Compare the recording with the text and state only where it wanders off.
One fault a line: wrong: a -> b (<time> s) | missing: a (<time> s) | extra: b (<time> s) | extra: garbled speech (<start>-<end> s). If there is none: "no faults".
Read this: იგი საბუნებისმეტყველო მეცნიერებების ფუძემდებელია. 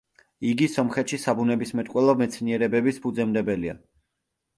extra: სომხეთში (0.8 s)